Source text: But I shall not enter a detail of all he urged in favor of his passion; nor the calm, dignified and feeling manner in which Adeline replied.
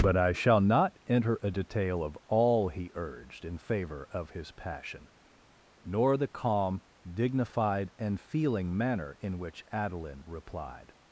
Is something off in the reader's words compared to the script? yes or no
no